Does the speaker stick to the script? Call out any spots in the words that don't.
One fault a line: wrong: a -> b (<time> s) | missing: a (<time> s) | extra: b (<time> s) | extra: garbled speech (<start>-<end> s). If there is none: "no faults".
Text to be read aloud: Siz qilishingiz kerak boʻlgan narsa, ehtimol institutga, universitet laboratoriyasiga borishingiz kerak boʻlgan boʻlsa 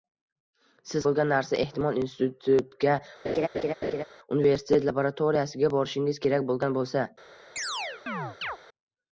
missing: qilishingiz kerak (1.1 s)